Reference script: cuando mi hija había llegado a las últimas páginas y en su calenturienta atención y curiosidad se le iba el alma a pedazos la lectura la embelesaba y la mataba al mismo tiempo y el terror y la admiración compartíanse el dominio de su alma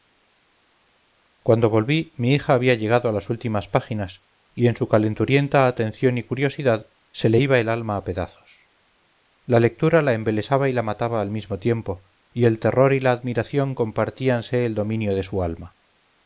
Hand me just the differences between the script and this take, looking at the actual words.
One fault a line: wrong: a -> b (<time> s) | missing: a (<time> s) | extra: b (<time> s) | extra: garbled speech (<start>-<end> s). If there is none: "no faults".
extra: volví (1.7 s)